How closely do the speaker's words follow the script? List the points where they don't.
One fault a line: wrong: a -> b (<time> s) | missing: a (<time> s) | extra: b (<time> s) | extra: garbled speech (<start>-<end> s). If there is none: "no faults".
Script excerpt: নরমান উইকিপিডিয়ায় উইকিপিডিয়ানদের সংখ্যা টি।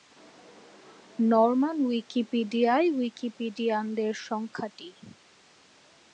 no faults